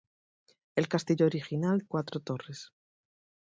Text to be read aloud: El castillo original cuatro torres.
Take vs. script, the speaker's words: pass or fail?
pass